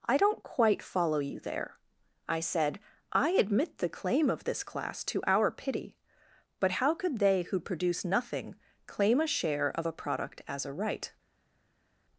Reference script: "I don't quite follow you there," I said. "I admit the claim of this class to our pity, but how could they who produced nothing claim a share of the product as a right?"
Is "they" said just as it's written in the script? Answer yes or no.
yes